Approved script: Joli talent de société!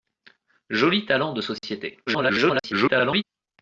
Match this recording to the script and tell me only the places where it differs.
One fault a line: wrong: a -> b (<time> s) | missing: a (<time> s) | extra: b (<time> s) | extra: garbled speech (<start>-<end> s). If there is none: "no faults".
extra: garbled speech (2.1-3.2 s)